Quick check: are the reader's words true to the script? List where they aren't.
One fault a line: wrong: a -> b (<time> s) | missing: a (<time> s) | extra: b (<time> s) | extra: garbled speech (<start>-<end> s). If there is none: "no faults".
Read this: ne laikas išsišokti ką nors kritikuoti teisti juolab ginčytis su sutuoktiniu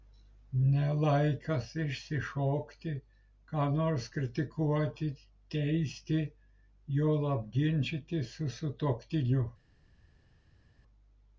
no faults